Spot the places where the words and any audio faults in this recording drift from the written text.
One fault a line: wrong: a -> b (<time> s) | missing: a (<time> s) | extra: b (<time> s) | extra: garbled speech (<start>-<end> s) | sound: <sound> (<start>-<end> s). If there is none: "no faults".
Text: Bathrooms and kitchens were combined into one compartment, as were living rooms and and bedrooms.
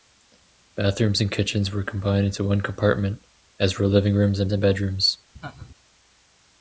sound: laugh (5.4-5.7 s)